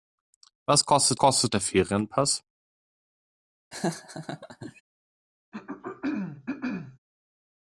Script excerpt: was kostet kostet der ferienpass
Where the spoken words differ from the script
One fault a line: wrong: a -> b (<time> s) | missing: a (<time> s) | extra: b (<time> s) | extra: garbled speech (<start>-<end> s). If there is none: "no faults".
no faults